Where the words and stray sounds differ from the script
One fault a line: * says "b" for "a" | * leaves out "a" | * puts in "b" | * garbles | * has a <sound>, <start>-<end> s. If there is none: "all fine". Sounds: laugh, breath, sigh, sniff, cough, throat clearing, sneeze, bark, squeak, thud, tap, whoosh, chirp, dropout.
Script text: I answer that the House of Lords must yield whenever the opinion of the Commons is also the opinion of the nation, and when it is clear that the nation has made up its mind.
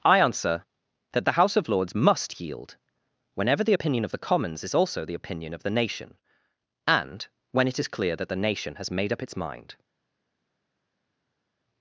all fine